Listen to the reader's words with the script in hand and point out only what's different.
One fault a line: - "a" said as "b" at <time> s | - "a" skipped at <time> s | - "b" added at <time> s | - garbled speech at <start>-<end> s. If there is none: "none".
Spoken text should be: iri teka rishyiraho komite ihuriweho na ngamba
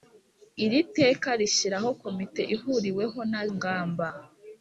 none